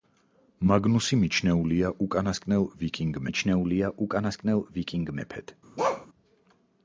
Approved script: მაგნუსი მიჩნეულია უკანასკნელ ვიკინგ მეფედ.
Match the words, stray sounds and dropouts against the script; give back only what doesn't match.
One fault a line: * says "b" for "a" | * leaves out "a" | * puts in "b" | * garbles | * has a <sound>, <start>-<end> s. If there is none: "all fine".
* puts in "მიჩნეულია უკანასკნელ ვიკინგ"
* has a bark, 5.8-6.1 s